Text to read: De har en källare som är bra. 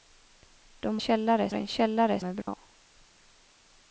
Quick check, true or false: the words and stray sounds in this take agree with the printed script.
false